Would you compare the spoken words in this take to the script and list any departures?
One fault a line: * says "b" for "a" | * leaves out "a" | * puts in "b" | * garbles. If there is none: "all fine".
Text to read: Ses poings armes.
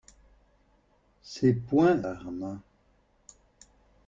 all fine